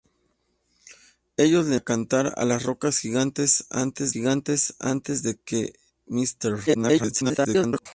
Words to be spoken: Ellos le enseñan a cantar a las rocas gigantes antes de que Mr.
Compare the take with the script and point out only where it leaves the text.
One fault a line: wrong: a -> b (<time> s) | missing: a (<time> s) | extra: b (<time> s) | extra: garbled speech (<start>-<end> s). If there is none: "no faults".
missing: enseñan (1.8 s)
extra: gigantes antes (4.1 s)
extra: garbled speech (6.7-7.9 s)